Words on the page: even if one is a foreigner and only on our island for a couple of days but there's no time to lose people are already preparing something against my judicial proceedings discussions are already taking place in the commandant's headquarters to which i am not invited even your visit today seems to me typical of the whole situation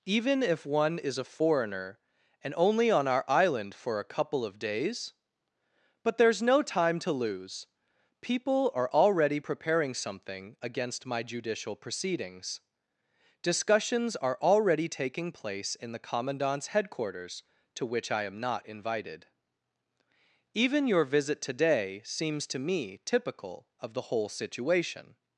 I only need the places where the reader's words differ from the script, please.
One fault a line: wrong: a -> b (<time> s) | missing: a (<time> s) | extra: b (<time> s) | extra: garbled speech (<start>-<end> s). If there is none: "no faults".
no faults